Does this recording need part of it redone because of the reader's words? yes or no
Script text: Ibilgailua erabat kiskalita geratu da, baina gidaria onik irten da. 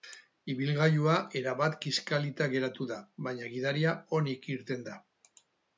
no